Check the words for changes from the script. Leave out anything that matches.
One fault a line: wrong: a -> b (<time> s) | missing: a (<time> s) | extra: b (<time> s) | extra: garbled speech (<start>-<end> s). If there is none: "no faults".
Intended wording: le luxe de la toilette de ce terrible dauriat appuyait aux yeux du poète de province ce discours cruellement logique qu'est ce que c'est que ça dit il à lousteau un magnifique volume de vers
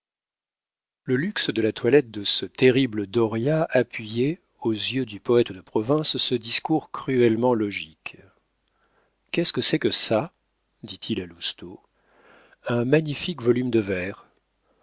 no faults